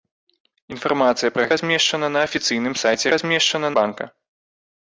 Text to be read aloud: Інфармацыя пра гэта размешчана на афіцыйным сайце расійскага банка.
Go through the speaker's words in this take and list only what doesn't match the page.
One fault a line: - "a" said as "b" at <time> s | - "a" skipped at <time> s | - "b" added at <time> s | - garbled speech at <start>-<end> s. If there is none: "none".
- "гэта" skipped at 1.4 s
- "расійскага" said as "размешчана" at 3.1 s